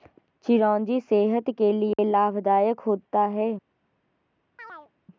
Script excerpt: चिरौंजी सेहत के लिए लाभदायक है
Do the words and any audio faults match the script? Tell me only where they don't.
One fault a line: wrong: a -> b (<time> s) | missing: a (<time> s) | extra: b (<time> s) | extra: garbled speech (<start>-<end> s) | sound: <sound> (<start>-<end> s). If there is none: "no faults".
sound: dropout (1.9-2.0 s)
extra: होता (2.8 s)
sound: chirp (4.6-4.9 s)